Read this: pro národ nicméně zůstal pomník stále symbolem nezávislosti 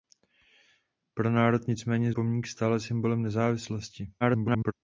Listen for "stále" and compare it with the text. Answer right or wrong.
right